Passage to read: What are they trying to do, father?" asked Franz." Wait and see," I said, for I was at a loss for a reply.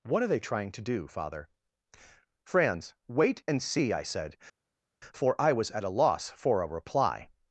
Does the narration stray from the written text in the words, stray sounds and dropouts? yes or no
yes